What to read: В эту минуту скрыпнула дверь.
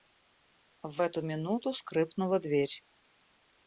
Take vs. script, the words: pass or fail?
pass